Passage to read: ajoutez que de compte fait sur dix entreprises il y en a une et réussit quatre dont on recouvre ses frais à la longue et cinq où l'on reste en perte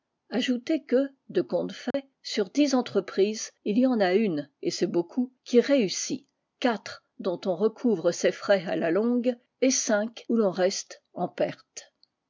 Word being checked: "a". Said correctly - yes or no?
yes